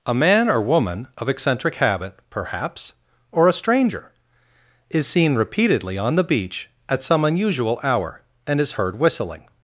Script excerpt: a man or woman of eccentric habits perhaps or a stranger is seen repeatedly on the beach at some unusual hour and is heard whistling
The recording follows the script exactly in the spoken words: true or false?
false